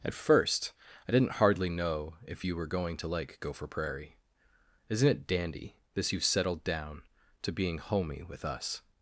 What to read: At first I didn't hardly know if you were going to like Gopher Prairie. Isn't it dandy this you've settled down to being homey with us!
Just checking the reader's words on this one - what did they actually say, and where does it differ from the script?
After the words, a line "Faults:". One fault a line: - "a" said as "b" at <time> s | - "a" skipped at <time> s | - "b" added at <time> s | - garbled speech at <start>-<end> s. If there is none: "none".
At first I didn't hardly know if you were going to like Gopher Prairie. Isn't it dandy this you've settled down to being homey with us!
Faults:
none